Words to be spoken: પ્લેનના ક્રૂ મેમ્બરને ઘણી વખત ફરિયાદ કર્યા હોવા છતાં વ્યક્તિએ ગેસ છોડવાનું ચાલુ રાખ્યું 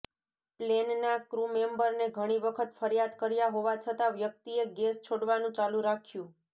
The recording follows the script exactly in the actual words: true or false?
true